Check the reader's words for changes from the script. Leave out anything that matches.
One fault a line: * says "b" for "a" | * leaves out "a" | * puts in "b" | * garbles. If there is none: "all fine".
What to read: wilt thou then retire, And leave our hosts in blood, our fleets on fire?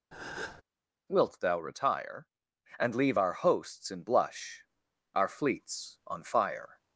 * leaves out "then"
* says "blush" for "blood"